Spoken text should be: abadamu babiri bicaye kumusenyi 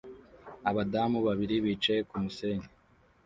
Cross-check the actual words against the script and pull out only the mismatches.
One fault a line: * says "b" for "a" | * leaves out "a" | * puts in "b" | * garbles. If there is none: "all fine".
all fine